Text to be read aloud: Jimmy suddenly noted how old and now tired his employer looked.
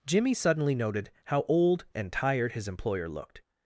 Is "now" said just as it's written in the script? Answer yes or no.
no